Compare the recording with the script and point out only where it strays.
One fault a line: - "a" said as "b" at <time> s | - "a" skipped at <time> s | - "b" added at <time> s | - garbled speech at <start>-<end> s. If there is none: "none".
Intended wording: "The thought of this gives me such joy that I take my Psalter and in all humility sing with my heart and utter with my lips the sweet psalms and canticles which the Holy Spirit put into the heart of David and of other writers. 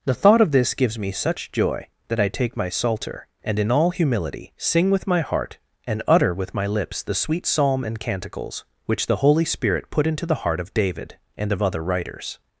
- "psalms" said as "psalm" at 7.5 s